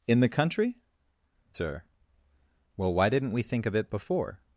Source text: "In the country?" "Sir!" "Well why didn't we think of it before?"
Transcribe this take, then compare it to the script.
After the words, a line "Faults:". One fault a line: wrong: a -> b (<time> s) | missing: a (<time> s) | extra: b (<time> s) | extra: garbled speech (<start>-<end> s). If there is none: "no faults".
"In the country?" "Sir!" "Well why didn't we think of it before?"
Faults:
no faults